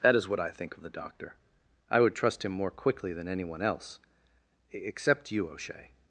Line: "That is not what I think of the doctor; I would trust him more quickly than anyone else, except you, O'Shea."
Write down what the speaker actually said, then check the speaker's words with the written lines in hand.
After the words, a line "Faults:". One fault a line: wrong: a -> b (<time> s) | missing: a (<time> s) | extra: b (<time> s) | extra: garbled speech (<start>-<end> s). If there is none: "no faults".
"That is what I think of the doctor; I would trust him more quickly than anyone else, except you, O'Shea."
Faults:
missing: not (0.3 s)